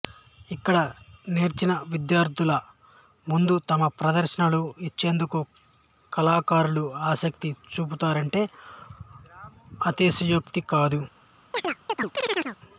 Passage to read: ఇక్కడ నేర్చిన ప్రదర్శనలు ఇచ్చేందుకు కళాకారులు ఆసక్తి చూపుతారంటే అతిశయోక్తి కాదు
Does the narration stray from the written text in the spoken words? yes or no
yes